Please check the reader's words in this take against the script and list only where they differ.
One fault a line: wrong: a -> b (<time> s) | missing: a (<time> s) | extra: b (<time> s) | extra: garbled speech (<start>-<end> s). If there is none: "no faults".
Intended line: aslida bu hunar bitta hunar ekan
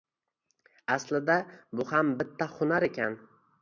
wrong: hunar -> ham (1.9 s)